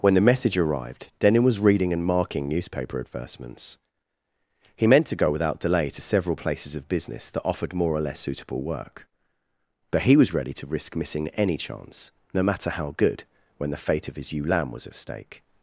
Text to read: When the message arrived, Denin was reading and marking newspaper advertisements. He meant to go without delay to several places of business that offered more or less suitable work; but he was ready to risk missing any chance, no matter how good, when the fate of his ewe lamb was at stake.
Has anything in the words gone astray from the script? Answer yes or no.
no